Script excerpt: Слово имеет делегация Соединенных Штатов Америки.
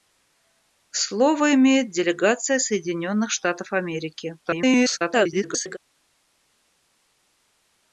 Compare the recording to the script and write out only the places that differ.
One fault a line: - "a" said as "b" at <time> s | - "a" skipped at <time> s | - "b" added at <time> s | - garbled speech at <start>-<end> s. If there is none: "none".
- garbled speech at 4.4-5.8 s